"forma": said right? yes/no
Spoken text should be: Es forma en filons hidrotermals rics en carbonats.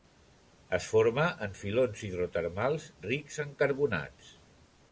yes